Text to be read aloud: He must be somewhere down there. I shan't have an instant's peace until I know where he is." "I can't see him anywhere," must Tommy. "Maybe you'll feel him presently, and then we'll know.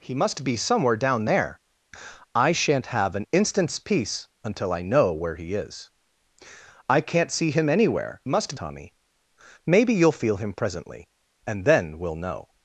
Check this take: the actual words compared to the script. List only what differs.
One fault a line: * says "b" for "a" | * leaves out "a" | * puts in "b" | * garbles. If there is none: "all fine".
all fine